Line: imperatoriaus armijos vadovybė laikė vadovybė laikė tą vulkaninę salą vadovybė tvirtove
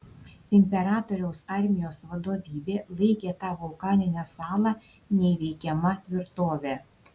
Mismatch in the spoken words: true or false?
true